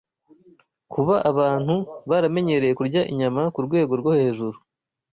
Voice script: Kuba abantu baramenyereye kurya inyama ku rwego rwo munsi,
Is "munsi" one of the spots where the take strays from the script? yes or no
yes